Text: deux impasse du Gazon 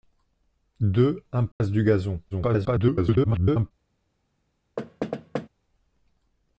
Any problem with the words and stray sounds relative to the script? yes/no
yes